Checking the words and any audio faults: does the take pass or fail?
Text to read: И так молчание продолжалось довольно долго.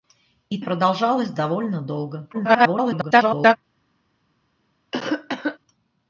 fail